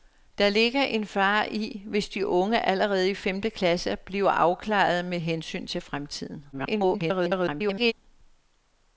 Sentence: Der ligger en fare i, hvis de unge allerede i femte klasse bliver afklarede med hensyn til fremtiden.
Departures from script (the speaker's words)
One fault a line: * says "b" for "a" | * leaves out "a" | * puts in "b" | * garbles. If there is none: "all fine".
* garbles